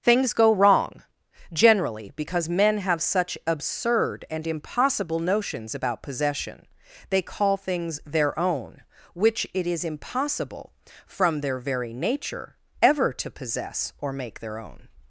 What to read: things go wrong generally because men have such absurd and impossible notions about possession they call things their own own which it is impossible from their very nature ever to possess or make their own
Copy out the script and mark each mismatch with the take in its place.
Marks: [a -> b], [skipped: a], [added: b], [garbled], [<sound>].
things go wrong generally because men have such absurd and impossible notions about possession they call things their own [skipped: own] which it is impossible from their very nature ever to possess or make their own